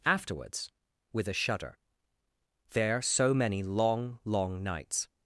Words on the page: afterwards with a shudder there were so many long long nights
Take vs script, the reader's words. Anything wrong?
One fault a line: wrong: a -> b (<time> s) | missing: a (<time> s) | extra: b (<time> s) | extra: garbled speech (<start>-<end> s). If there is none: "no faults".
missing: were (3.0 s)